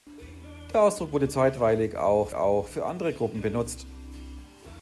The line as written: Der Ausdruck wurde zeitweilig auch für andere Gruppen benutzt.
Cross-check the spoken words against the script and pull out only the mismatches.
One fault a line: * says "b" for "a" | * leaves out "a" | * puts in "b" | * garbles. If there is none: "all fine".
* puts in "auch"